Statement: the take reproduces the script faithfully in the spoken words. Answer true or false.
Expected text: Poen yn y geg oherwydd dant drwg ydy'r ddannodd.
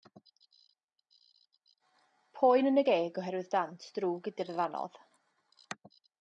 true